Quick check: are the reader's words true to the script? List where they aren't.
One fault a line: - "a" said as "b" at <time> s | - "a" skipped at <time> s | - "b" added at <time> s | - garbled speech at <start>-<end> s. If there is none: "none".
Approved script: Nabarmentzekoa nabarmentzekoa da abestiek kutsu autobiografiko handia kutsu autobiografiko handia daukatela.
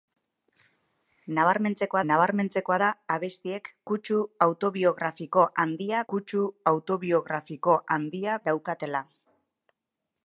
none